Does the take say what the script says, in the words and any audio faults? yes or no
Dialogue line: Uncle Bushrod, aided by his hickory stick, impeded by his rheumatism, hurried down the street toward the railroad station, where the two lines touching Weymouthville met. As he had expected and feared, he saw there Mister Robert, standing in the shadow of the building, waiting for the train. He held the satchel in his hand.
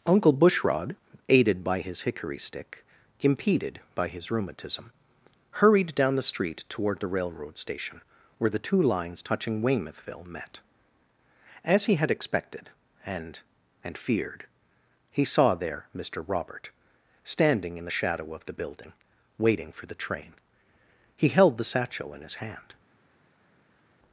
no